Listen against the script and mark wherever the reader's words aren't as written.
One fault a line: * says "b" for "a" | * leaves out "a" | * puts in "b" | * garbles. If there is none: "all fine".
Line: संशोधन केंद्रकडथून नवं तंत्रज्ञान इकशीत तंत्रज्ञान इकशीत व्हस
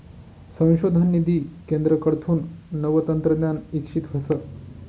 * puts in "निधी"
* leaves out "तंत्रज्ञान इकशीत"